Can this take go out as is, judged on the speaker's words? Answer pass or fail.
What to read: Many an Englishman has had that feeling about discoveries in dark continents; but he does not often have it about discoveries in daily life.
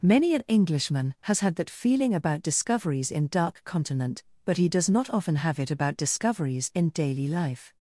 fail